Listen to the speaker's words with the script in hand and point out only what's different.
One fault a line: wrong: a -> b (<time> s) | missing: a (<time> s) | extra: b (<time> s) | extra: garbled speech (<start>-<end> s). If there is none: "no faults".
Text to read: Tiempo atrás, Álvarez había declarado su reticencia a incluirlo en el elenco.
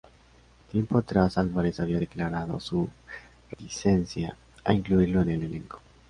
no faults